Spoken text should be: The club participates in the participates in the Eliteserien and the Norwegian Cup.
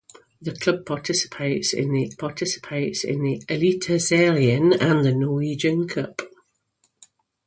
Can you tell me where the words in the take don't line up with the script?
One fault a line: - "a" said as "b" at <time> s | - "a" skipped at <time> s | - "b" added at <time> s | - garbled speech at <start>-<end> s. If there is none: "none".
none